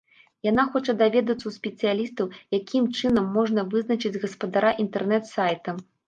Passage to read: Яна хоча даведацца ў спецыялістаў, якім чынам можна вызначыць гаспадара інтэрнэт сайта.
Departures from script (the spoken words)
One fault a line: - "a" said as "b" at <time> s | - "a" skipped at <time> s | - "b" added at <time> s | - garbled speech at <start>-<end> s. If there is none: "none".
none